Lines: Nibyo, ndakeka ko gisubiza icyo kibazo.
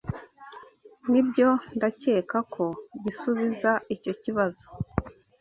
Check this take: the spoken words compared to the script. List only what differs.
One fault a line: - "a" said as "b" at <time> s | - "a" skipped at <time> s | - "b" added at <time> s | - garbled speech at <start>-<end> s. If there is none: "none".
none